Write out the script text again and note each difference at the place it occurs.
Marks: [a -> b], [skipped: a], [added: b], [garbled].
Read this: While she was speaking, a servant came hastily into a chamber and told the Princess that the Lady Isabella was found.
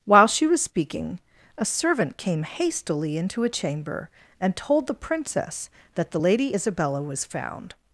While she was speaking, a servant came hastily into a chamber and told the Princess that the Lady Isabella was found.